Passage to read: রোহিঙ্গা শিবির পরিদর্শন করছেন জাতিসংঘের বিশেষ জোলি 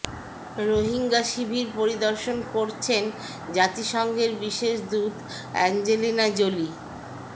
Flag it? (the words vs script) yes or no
yes